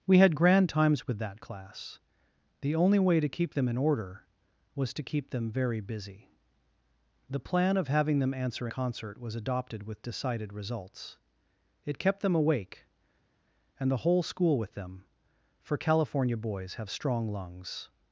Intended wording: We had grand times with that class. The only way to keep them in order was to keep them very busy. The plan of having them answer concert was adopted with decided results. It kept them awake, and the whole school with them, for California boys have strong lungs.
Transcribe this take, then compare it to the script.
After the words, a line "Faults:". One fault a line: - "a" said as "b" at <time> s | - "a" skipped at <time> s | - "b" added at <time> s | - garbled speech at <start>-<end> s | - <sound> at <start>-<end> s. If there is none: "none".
We had grand times with that class. The only way to keep them in order was to keep them very busy. The plan of having them answer concert was adopted with decided results. It kept them awake, and the whole school with them, for California boys have strong lungs.
Faults:
none